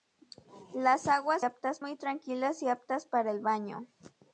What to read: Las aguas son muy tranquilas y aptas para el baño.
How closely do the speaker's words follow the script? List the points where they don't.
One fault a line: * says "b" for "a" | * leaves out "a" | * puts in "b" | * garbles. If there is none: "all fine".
* says "aptas" for "son"